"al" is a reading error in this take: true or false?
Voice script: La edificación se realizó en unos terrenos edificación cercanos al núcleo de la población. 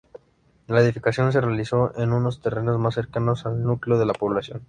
false